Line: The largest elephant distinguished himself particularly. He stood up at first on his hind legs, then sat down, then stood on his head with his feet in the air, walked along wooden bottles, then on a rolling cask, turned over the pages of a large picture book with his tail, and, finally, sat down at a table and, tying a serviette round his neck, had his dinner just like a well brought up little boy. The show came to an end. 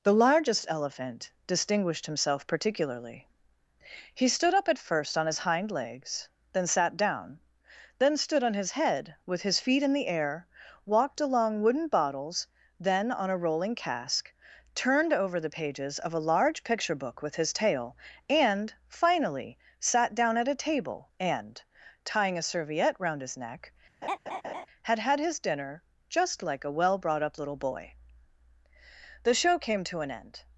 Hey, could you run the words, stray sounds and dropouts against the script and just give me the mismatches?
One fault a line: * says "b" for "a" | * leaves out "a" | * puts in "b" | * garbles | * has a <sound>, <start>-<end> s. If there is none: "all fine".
* has a laugh, 24.0-24.7 s
* puts in "had"